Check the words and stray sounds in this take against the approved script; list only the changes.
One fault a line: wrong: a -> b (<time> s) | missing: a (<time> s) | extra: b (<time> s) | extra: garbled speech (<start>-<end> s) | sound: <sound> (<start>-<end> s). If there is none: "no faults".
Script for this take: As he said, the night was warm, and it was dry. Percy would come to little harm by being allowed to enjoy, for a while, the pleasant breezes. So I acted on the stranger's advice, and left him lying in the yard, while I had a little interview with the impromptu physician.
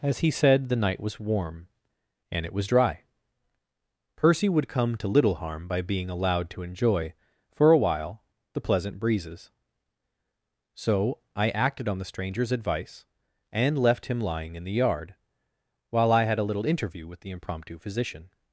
no faults